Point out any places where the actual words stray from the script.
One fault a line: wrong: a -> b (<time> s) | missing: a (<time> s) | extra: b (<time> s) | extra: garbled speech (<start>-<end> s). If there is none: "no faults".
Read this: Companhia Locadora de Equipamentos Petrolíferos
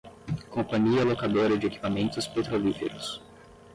no faults